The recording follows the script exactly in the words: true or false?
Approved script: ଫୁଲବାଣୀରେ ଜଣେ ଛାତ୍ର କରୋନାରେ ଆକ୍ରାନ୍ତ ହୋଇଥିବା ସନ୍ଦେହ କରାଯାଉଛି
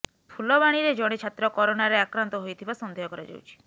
true